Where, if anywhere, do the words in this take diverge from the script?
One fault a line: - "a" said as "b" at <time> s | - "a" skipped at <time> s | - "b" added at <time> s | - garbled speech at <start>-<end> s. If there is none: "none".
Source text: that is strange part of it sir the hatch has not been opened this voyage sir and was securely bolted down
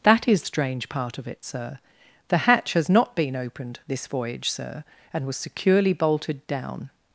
none